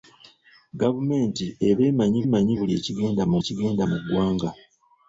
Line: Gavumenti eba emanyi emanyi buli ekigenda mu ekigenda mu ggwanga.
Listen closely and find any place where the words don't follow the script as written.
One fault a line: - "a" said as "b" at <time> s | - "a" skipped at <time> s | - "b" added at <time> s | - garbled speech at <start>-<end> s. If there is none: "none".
none